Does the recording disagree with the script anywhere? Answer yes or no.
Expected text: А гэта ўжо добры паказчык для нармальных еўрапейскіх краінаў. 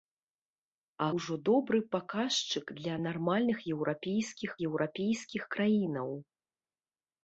yes